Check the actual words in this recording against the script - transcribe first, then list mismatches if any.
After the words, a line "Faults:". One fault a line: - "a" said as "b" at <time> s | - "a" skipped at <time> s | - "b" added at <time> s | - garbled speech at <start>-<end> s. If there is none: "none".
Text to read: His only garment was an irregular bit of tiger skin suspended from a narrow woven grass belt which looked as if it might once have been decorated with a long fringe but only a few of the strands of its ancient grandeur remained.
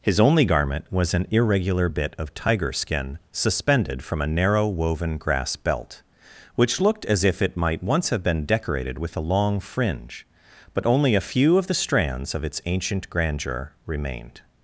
His only garment was an irregular bit of tiger skin suspended from a narrow woven grass belt which looked as if it might once have been decorated with a long fringe but only a few of the strands of its ancient grandeur remained.
Faults:
none